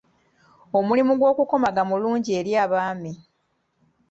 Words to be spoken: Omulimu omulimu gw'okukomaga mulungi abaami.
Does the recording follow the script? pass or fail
fail